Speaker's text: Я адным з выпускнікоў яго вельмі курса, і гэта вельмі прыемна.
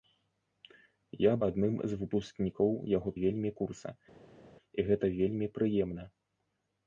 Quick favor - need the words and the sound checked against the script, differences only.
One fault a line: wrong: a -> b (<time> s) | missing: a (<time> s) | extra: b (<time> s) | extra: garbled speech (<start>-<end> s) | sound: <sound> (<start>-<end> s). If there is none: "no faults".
no faults